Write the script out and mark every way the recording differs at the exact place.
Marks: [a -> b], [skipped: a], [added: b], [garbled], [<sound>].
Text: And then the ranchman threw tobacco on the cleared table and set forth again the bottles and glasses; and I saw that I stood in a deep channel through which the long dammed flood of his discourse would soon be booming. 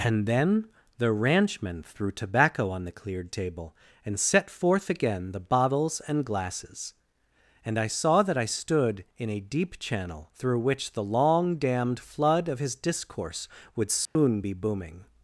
And then the ranchman threw tobacco on the cleared table and set forth again the bottles and glasses; and I saw that I stood in a deep channel through which the long dammed flood of his discourse would soon [dropout] be booming.